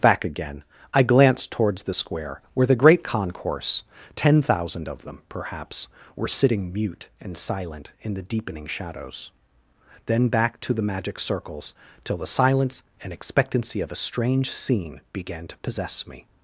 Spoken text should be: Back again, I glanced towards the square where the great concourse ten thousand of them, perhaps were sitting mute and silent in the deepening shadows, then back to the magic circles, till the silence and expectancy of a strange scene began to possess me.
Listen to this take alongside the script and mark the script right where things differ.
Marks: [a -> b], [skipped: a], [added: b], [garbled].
Back again, I glanced towards the square where the great concourse ten thousand of them, perhaps were sitting mute and silent in the deepening shadows, then back to the magic circles, till the silence and expectancy of a strange scene began to possess me.